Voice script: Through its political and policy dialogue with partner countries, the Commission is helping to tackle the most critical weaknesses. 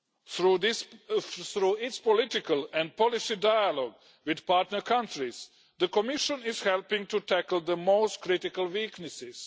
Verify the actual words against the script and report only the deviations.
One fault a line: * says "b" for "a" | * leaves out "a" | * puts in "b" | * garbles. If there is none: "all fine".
all fine